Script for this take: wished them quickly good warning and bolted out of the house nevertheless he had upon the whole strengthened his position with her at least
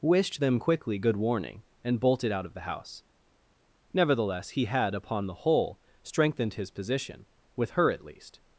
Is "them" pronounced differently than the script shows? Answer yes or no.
no